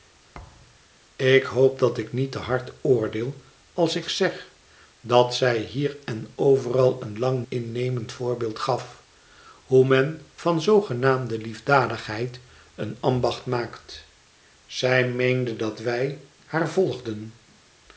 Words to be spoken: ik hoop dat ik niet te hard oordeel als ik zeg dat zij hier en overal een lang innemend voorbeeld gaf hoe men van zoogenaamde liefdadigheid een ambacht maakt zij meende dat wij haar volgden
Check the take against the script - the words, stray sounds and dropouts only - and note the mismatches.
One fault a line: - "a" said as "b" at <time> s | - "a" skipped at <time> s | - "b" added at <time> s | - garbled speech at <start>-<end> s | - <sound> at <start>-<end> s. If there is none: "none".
- thud at 0.3-0.8 s